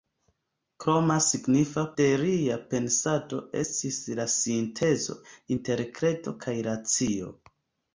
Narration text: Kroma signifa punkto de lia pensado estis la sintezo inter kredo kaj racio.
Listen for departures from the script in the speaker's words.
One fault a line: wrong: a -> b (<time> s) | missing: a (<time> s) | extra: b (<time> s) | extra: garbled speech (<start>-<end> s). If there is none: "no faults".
missing: punkto (1.8 s)